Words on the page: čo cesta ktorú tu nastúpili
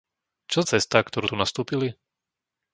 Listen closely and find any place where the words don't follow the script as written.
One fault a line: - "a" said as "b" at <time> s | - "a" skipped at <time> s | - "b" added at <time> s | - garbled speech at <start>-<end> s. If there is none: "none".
none